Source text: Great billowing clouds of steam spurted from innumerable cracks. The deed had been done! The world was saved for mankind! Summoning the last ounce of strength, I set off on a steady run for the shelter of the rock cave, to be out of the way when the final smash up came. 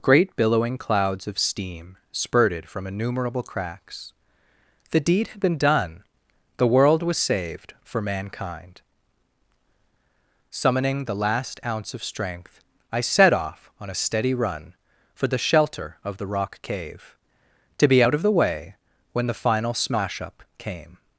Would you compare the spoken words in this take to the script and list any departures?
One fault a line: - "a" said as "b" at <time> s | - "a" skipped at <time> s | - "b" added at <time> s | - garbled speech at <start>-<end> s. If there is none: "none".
none